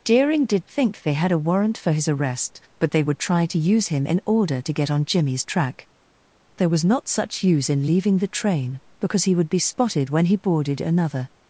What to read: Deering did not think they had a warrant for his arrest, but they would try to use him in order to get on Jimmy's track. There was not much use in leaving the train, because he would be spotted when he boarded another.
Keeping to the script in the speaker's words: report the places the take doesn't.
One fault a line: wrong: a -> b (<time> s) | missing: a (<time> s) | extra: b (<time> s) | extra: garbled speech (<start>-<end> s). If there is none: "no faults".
missing: not (0.7 s)
wrong: much -> such (7.1 s)